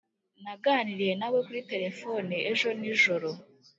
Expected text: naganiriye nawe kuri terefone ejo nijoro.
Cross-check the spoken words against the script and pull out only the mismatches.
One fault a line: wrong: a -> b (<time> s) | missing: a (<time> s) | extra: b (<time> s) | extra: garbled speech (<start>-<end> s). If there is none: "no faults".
no faults